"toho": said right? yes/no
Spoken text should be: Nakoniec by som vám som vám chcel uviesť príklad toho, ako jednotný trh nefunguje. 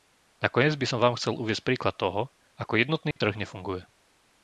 yes